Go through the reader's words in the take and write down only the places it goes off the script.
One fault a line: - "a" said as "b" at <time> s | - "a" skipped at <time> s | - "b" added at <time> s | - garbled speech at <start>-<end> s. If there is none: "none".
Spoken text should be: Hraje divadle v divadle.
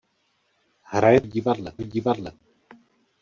none